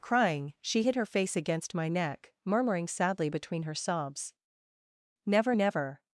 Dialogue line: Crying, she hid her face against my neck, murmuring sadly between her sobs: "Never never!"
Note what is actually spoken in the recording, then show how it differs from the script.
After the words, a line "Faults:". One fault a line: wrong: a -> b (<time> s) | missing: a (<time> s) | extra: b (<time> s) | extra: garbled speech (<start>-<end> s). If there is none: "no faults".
Crying, she hid her face against my neck, murmuring sadly between her sobs: "Never never!"
Faults:
no faults